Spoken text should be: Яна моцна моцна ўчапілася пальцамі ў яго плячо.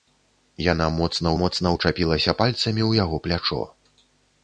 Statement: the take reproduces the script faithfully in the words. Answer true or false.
true